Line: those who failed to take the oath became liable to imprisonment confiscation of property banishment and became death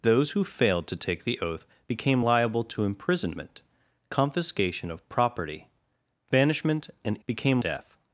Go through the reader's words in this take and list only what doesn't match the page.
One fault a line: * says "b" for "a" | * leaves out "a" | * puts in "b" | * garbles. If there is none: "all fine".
all fine